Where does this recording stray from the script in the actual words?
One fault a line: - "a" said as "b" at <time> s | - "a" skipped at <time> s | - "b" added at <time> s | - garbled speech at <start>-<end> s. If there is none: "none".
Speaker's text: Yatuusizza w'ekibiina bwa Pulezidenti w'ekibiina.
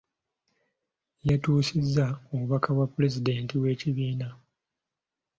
- "w'ekibiina" said as "obubaka" at 2.3 s